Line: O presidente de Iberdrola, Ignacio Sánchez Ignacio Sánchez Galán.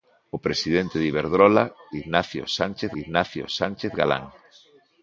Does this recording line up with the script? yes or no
yes